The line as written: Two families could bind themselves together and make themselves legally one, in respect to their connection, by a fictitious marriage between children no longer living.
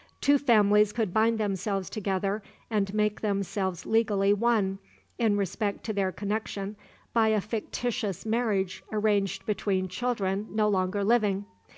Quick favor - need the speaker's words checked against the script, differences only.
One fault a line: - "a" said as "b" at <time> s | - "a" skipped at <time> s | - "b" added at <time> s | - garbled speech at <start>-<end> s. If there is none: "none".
- "arranged" added at 8.9 s